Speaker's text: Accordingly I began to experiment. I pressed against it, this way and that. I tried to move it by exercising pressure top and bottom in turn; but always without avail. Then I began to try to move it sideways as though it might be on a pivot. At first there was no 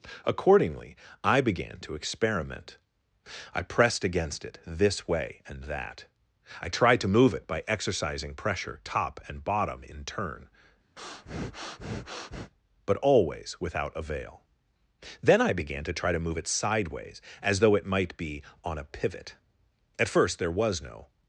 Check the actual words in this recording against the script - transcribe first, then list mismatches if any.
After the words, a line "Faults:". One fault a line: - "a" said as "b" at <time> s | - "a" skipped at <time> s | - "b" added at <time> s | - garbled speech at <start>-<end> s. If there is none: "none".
Accordingly I began to experiment. I pressed against it, this way and that. I tried to move it by exercising pressure top and bottom in turn; but always without avail. Then I began to try to move it sideways as though it might be on a pivot. At first there was no
Faults:
none